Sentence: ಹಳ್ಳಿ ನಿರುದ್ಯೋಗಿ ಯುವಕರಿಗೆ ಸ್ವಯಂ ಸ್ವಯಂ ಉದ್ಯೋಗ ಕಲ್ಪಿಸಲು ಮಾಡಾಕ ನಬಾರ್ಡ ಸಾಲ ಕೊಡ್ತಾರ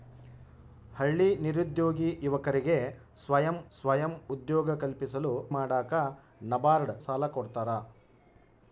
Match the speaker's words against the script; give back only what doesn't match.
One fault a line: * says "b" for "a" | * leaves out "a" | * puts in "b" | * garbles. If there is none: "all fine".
all fine